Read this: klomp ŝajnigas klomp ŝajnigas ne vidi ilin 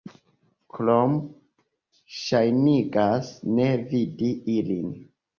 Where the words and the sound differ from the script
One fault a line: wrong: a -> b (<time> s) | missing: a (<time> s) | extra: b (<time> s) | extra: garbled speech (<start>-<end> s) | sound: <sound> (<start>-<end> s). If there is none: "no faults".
missing: klomp ŝajnigas (3.3 s)